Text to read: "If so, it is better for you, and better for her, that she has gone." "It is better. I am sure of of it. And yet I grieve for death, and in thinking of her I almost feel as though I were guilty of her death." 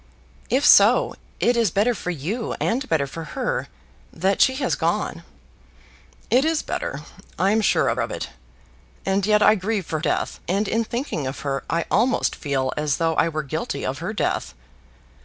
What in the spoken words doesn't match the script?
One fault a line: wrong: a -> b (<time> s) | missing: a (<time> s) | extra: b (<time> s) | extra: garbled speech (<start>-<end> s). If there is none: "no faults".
no faults